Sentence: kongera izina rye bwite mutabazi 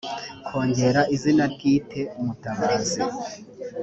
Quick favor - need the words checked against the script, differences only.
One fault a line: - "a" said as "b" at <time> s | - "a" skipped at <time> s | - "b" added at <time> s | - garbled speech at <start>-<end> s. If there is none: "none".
- "rye" skipped at 1.4 s